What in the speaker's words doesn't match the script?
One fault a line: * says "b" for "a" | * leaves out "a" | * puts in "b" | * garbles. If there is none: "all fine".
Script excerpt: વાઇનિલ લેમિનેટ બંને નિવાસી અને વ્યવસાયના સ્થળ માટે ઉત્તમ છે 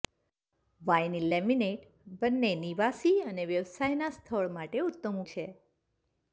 all fine